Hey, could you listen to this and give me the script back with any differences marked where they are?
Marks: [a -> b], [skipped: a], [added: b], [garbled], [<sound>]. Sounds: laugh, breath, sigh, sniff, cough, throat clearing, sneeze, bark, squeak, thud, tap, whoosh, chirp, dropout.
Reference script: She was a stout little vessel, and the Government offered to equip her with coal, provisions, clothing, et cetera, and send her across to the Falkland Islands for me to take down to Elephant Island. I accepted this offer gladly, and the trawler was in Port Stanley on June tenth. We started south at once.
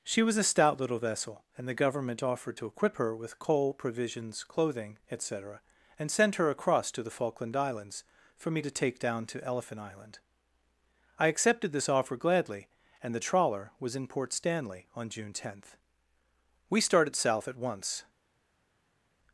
She was a stout little vessel, and the Government offered to equip her with coal, provisions, clothing, et cetera, and send her across to the Falkland Islands for me to take down to Elephant Island. I accepted this offer gladly, and the trawler was in Port Stanley on June tenth. We started south at once.